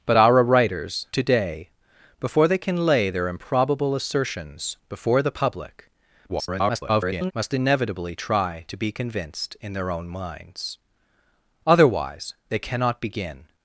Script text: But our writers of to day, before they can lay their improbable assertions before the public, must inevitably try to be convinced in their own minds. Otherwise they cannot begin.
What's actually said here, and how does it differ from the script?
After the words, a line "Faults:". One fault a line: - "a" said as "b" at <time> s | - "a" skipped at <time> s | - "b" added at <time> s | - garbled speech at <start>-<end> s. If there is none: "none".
But our writers to day, before they can lay their improbable assertions before the public, [garbled] must inevitably try to be convinced in their own minds. Otherwise they cannot begin.
Faults:
- "of" skipped at 1.1 s
- garbled speech at 6.3-7.3 s